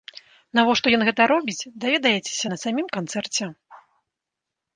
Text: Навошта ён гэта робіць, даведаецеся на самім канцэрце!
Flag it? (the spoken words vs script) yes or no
no